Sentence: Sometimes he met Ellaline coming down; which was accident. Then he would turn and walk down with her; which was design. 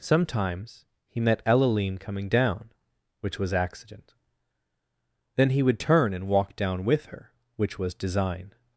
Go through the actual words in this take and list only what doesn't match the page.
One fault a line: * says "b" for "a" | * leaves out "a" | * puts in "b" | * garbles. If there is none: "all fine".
all fine